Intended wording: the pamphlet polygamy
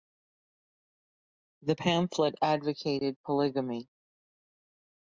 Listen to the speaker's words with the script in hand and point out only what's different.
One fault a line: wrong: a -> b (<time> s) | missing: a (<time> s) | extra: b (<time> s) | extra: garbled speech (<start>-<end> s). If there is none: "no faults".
extra: advocated (2.4 s)